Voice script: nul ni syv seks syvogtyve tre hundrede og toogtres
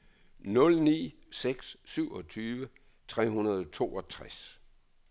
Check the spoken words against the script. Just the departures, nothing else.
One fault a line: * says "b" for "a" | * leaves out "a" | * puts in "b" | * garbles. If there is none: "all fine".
* leaves out "syv"